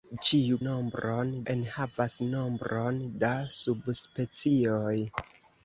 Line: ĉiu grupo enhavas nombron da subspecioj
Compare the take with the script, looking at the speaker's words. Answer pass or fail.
fail